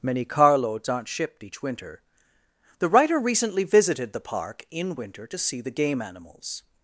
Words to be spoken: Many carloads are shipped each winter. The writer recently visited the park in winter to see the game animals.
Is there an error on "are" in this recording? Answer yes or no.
yes